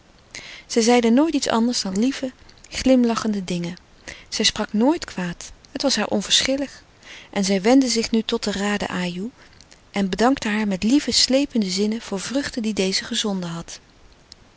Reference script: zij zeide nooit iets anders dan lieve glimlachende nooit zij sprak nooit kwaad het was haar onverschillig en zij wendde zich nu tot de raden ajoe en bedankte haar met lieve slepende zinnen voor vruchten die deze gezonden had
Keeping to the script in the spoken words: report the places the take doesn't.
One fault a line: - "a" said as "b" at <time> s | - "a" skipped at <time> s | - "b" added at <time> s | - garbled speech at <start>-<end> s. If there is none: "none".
- "nooit" said as "dingen" at 3.4 s